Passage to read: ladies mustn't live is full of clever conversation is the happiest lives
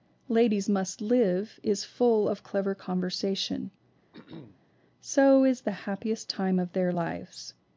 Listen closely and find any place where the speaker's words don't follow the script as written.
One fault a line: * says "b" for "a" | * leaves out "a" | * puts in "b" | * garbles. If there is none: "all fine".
* says "must" for "mustn't"
* puts in "so"
* puts in "time of their"